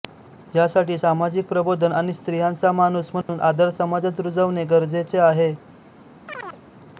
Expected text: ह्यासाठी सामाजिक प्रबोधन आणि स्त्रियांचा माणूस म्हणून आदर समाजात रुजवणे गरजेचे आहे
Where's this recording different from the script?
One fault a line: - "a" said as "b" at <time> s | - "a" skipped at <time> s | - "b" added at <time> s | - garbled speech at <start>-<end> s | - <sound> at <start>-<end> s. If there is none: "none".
- dropout at 3.2-3.3 s
- chirp at 6.3-6.6 s